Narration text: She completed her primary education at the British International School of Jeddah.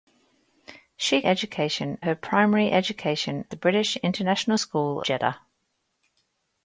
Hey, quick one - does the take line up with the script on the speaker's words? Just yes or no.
no